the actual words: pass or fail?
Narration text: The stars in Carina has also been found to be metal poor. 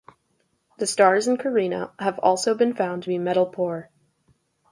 fail